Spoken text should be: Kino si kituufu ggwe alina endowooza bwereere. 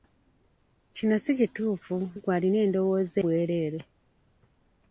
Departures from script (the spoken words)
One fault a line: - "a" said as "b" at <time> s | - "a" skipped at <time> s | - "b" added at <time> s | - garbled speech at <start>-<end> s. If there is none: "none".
none